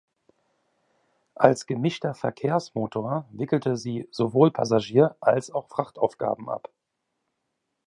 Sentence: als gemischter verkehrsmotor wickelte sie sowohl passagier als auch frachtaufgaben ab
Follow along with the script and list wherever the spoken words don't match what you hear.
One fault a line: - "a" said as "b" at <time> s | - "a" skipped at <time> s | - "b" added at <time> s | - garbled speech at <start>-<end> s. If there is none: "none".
none